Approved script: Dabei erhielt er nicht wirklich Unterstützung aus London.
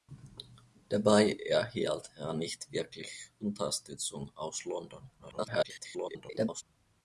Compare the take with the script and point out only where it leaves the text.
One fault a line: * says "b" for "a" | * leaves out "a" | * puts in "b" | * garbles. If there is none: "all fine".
* garbles